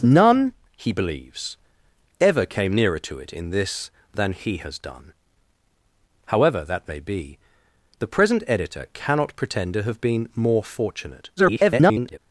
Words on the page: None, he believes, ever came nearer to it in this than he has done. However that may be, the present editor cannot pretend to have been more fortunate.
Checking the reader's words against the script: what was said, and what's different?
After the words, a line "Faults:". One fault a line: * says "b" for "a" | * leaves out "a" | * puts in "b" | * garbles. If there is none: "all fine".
None, he believes, ever came nearer to it in this than he has done. However that may be, the present editor cannot pretend to have been more fortunate. [garbled]
Faults:
* garbles